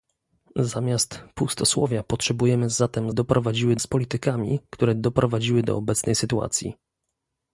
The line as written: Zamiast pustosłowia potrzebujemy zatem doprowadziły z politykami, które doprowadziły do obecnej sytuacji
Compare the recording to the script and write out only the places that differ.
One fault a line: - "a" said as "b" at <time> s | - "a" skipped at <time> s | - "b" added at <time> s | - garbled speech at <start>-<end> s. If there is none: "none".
none